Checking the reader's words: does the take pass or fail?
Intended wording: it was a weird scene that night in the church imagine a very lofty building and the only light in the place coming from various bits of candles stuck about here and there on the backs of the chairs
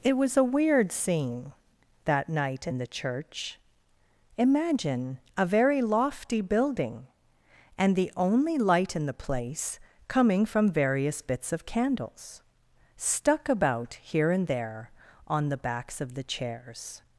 pass